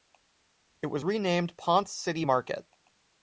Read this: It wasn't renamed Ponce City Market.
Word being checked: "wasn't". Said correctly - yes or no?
no